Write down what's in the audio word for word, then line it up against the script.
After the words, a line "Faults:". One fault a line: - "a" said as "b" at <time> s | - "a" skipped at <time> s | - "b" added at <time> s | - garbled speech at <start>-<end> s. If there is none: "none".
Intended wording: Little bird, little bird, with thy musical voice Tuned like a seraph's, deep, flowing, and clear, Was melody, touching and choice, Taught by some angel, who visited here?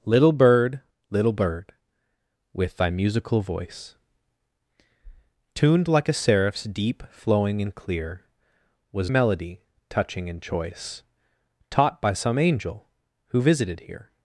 Little bird, little bird, with thy musical voice Tuned like a seraph's, deep, flowing, and clear, Was melody, touching and choice, Taught by some angel, who visited here?
Faults:
none